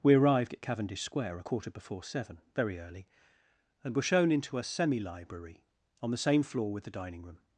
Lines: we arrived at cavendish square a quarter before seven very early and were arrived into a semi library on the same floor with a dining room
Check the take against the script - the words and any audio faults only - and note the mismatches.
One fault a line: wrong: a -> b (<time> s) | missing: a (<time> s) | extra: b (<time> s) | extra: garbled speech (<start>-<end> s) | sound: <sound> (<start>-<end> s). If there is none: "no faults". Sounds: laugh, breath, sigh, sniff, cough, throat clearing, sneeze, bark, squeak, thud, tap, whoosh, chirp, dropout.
wrong: arrived -> shown (4.1 s)
wrong: a -> the (6.8 s)